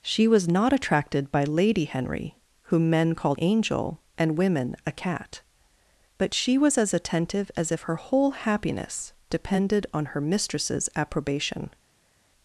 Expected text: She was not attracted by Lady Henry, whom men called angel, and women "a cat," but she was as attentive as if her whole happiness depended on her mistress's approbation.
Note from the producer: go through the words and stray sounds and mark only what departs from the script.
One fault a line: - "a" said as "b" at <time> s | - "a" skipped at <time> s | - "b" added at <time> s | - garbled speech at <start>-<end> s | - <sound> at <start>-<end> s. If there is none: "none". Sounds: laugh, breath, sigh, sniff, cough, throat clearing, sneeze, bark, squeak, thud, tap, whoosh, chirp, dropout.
none